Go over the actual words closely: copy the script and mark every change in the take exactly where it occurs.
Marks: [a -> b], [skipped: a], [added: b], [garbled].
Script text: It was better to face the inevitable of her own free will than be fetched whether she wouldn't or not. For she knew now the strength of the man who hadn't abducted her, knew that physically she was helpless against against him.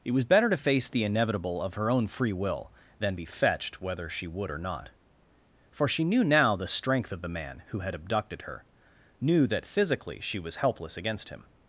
It was better to face the inevitable of her own free will than be fetched whether she [wouldn't -> would] or not. For she knew now the strength of the man who [hadn't -> had] abducted her, knew that physically she was helpless against [skipped: against] him.